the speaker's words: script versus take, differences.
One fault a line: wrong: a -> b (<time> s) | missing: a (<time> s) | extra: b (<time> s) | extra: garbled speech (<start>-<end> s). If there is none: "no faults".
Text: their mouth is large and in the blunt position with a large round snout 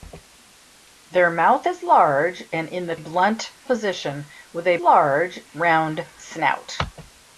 no faults